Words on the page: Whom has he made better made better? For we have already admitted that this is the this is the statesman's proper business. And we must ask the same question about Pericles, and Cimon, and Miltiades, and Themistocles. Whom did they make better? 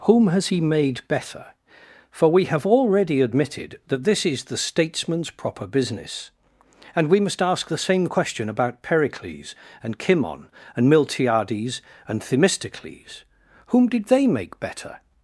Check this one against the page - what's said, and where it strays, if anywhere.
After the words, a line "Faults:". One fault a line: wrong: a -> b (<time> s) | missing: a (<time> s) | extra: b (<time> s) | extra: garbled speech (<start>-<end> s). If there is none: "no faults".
Whom has he made better? For we have already admitted that this is the statesman's proper business. And we must ask the same question about Pericles, and Cimon, and Miltiades, and Themistocles. Whom did they make better?
Faults:
missing: made better (1.5 s)
missing: this is the (4.6 s)